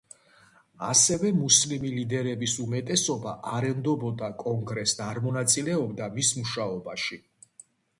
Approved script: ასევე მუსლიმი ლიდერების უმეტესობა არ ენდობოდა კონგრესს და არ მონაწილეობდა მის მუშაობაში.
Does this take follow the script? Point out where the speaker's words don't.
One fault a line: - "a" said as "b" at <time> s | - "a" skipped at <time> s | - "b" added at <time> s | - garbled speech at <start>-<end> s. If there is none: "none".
none